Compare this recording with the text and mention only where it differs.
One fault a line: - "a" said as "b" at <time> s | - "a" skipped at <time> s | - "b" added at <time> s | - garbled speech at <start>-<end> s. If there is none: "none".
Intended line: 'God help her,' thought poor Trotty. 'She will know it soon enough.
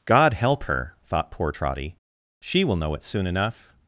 none